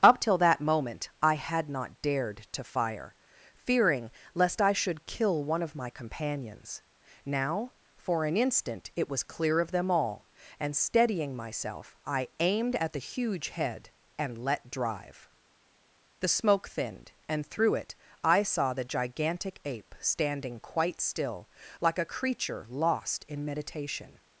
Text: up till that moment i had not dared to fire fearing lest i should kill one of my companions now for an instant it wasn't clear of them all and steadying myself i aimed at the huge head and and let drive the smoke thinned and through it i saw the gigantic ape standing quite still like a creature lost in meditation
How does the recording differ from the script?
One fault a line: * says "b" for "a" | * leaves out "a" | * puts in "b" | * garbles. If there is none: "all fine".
* says "was" for "wasn't"
* leaves out "and"